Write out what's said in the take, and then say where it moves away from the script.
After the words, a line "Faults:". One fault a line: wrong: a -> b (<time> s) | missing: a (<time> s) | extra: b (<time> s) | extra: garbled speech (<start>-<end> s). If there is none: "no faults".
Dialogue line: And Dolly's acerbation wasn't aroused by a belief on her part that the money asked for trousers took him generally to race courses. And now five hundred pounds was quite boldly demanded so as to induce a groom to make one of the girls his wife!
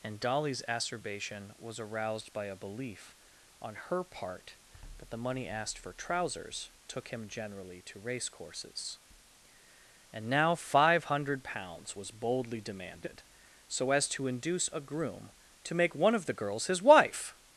And Dolly's acerbation was aroused by a belief on her part that the money asked for trousers took him generally to race courses. And now five hundred pounds was boldly demanded so as to induce a groom to make one of the girls his wife!
Faults:
wrong: wasn't -> was (1.6 s)
missing: quite (12.1 s)